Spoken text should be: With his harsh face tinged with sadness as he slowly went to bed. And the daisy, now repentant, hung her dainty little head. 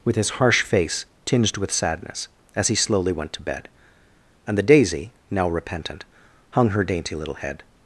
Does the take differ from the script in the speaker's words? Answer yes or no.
no